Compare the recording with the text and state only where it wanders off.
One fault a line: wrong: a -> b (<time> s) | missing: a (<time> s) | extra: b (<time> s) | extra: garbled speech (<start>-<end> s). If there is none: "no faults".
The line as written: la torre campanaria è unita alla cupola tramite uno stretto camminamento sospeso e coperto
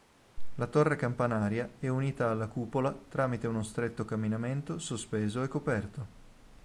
no faults